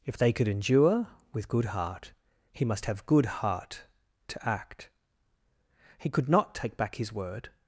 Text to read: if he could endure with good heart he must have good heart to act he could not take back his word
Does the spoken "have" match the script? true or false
true